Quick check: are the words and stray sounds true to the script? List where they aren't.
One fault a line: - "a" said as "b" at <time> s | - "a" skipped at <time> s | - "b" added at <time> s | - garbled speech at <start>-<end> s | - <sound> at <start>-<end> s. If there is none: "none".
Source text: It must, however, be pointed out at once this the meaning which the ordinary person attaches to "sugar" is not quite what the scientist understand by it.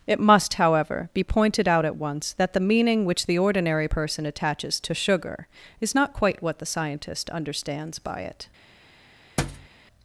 - "this" said as "that" at 2.3 s
- "understand" said as "understands" at 7.3 s
- thud at 9.4-9.7 s